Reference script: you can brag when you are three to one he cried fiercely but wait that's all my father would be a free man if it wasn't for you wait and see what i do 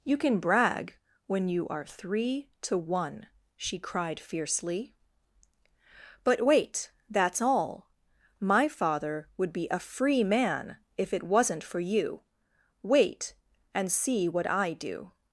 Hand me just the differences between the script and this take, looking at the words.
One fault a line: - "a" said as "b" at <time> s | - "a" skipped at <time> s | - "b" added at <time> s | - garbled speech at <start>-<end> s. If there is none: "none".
- "he" said as "she" at 3.5 s